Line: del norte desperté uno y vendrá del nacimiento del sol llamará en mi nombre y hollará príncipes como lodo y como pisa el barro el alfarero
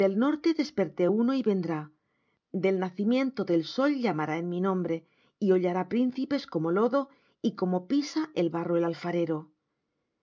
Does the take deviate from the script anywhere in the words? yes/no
no